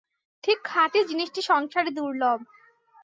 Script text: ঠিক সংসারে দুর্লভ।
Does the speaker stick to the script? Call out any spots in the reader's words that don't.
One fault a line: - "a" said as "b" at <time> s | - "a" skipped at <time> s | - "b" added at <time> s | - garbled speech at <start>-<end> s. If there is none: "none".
- "খাঁটি জিনিসটি" added at 0.6 s